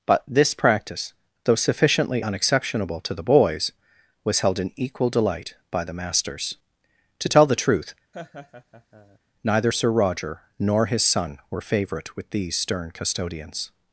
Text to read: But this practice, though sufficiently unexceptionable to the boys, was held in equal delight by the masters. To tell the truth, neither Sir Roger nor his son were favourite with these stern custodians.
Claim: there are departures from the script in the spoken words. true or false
false